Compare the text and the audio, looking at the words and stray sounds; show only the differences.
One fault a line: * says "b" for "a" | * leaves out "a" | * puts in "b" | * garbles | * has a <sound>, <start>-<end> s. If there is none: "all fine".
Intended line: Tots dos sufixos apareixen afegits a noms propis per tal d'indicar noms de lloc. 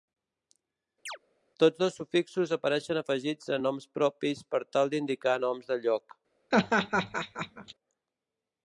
* has a chirp, 1.1-1.2 s
* has a laugh, 6.5-7.7 s